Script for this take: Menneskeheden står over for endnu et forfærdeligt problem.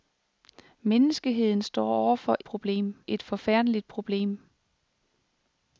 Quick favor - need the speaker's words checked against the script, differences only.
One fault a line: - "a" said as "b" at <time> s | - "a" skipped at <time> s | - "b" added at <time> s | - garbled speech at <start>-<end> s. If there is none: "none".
- "endnu" said as "problem" at 2.4 s